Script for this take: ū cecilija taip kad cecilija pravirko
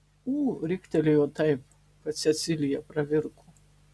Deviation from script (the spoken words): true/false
true